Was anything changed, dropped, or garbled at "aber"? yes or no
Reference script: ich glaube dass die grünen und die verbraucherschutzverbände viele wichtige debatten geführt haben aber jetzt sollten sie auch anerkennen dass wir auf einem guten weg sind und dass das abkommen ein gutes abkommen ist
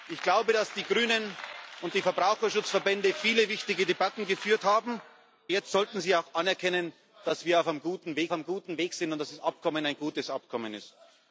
yes